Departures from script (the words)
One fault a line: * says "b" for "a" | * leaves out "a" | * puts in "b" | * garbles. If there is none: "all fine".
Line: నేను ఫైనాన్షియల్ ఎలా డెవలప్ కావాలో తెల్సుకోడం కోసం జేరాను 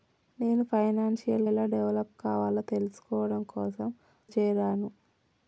all fine